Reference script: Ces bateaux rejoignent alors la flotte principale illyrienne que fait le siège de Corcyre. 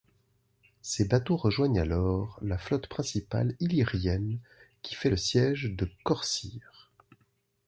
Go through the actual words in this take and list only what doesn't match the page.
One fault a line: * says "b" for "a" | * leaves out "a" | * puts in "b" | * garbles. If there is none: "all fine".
* says "qui" for "que"